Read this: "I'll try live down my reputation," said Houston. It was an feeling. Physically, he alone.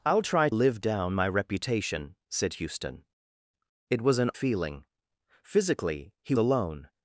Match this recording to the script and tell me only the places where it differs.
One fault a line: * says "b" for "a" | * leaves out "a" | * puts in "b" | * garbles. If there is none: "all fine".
all fine